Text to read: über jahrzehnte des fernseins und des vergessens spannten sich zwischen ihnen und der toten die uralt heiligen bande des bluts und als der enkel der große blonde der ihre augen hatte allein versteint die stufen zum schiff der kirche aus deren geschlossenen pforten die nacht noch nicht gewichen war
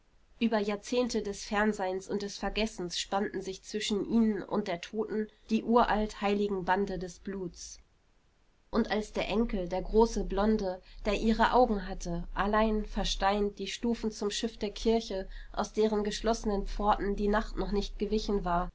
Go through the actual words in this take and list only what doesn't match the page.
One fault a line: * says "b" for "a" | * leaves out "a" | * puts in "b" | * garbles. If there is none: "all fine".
all fine